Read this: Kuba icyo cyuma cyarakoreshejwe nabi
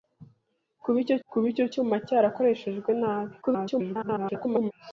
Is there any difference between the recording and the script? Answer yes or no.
yes